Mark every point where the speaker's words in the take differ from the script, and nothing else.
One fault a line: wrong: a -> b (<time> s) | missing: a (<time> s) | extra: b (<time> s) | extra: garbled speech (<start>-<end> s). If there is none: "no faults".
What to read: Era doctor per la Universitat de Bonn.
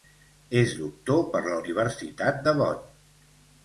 wrong: Era -> És (0.6 s)